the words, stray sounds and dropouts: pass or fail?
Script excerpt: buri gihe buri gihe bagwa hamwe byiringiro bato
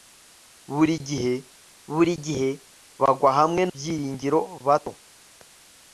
pass